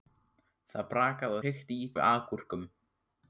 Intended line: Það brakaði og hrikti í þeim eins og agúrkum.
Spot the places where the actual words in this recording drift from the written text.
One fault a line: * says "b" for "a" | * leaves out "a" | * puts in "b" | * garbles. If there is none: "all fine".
* leaves out "og"
* leaves out "þeim eins"